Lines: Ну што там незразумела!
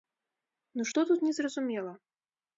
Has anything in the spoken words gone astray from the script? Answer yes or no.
yes